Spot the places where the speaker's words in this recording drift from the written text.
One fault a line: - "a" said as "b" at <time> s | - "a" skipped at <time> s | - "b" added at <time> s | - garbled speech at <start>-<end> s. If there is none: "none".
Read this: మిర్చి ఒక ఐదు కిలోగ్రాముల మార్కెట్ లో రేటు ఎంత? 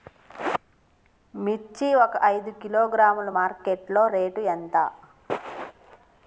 none